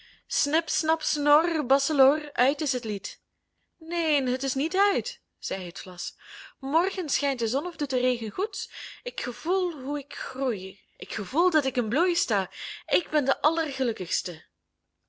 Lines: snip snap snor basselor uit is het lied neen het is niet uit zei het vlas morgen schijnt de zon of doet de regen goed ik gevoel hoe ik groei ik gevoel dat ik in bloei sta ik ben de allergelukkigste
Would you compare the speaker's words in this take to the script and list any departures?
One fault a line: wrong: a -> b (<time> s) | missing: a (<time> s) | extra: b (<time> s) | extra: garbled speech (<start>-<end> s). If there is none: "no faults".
no faults